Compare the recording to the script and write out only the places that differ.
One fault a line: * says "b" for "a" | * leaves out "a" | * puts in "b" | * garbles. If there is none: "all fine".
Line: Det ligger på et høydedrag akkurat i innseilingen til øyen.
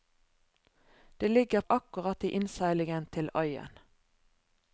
* leaves out "på et høydedrag"